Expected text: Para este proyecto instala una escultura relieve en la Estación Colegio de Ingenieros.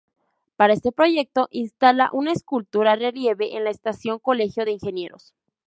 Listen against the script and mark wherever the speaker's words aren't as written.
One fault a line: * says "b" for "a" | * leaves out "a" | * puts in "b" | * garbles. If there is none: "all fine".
all fine